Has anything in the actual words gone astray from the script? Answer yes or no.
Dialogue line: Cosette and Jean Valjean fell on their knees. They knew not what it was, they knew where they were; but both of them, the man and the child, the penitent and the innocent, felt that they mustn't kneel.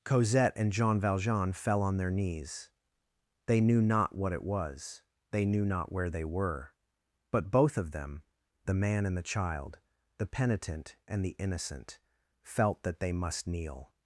yes